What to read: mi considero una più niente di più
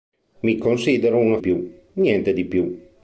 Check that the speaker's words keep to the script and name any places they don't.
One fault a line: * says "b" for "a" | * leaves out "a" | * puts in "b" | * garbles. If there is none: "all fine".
all fine